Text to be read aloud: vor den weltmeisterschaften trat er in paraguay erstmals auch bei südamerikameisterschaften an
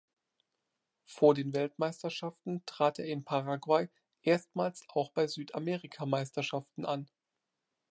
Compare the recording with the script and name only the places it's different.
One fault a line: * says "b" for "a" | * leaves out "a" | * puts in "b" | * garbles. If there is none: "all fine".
all fine